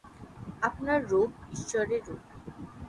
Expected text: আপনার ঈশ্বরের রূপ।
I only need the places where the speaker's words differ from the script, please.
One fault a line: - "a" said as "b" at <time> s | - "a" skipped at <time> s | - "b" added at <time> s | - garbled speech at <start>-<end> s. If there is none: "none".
- "রূপ" added at 1.1 s